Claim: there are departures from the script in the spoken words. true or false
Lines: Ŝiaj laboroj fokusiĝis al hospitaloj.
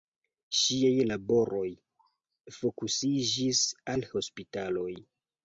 false